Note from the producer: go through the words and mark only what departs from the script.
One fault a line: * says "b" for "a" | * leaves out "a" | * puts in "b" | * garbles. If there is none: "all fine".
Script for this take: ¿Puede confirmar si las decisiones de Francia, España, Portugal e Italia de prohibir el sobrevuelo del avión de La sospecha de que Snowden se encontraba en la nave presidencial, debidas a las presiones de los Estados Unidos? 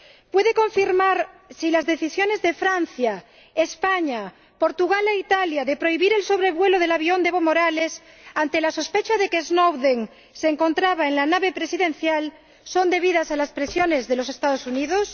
* puts in "Evo Morales ante"
* puts in "son"